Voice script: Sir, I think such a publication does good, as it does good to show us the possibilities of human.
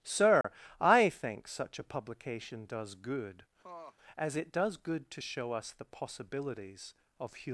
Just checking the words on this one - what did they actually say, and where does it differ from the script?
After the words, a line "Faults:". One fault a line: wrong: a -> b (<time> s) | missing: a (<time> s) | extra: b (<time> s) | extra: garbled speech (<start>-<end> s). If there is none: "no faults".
Sir, I think such a publication does good, as it does good to show us the possibilities of human.
Faults:
no faults